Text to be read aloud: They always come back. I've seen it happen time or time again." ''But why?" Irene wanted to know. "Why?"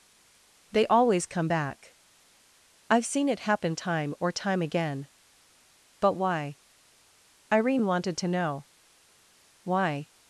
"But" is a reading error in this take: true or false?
false